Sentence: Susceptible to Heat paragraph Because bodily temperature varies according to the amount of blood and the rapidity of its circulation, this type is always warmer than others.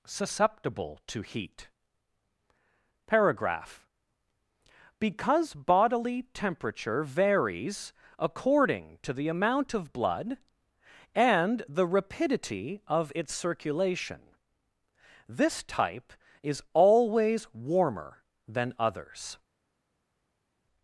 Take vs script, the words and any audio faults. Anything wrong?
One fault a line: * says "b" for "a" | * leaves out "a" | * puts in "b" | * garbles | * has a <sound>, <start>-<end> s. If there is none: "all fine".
all fine